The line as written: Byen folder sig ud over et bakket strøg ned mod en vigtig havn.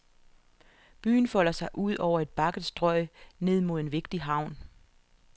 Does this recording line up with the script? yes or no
yes